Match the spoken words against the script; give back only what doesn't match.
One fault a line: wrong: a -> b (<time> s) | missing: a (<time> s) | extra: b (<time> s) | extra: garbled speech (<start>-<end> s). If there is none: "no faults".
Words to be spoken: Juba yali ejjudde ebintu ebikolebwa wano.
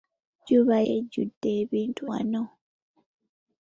missing: yali (0.8 s)
missing: ebikolebwa (2.0 s)